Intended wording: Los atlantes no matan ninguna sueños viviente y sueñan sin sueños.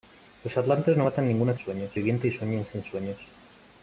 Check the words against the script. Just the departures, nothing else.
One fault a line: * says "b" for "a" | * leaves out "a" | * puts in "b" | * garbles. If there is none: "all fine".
all fine